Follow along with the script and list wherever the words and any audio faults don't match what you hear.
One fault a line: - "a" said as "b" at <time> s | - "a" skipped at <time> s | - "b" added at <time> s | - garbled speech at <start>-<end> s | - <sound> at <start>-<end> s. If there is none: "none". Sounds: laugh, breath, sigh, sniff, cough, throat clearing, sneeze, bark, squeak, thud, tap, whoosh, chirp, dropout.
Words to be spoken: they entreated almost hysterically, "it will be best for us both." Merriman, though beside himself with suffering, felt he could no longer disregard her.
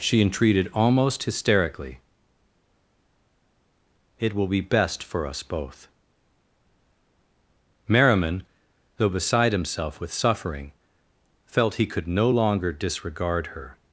- "they" said as "she" at 0.0 s